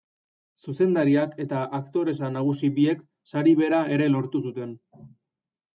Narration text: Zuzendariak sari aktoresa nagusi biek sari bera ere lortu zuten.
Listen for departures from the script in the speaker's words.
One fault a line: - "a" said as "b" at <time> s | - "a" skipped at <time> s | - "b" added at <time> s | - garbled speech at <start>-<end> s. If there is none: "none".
- "sari" said as "eta" at 1.4 s